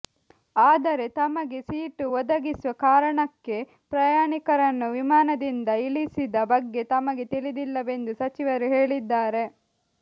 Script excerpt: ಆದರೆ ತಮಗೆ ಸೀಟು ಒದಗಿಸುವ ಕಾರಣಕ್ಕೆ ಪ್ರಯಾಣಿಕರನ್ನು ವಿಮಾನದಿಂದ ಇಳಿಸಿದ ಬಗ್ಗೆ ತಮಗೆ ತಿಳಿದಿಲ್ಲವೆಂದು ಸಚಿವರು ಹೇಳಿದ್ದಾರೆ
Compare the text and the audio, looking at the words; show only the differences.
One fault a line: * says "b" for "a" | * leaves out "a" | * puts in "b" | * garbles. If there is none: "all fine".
all fine